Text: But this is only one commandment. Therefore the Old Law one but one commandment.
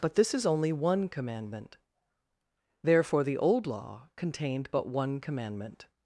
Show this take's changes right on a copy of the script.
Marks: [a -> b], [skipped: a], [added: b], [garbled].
But this is only one commandment. Therefore the Old Law [one -> contained] but one commandment.